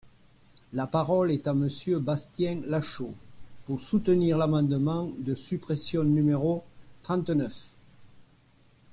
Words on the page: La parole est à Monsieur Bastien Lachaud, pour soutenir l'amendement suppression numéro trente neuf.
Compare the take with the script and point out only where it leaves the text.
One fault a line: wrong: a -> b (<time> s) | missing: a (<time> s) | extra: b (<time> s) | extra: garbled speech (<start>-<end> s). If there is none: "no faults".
extra: de (5.2 s)